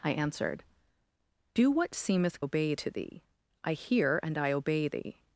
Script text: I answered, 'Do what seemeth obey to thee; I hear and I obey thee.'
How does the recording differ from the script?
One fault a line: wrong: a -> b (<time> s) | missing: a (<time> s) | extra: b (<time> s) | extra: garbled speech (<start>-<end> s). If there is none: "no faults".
no faults